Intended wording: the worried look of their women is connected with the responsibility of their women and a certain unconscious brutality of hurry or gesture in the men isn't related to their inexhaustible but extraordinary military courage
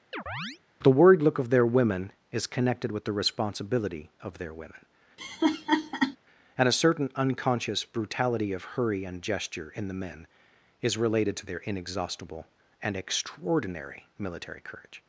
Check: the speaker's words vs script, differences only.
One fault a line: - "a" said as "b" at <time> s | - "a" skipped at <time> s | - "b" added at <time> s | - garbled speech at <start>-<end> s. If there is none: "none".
- "or" said as "and" at 9.0 s
- "isn't" said as "is" at 10.8 s
- "but" said as "and" at 12.8 s